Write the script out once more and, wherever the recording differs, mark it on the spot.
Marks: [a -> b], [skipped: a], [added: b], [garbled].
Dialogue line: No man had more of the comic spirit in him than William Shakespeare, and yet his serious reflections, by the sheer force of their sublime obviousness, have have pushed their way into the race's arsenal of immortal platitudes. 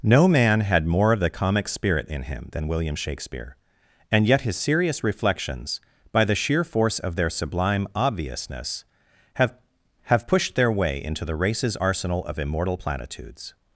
No man had more of the comic spirit in him than William Shakespeare, and yet his serious reflections, by the sheer force of their sublime obviousness, have have pushed their way into the race's arsenal of immortal platitudes.